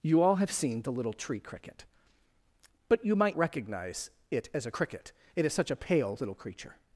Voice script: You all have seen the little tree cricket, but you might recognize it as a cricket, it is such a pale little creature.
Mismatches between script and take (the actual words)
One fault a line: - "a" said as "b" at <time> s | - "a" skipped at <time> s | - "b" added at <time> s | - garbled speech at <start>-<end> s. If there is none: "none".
none